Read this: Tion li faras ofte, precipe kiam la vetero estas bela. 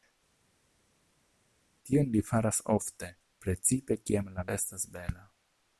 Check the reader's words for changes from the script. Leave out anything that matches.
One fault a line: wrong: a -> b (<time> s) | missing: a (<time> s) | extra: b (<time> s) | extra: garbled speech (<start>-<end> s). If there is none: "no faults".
missing: vetero (4.5 s)